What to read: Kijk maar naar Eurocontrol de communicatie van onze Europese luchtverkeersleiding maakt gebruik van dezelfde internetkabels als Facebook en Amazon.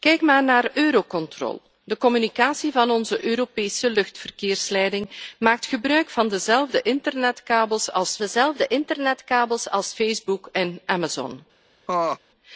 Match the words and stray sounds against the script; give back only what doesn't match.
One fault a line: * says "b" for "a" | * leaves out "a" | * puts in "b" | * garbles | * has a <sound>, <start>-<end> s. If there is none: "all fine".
* puts in "dezelfde internetkabels als"
* has a laugh, 11.9-12.2 s